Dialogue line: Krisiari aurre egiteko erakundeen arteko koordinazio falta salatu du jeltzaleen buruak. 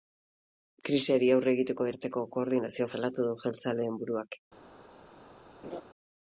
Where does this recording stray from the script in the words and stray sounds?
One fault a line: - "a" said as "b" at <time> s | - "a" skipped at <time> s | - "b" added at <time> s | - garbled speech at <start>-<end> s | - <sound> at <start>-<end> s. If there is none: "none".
- "erakundeen" skipped at 1.9 s
- "falta" skipped at 2.9 s
- laugh at 5.6-5.8 s